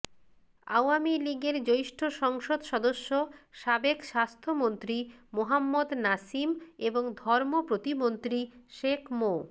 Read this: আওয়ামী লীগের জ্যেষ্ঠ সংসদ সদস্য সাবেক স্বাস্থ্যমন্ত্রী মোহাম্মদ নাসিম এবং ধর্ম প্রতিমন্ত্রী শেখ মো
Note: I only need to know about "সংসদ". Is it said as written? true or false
true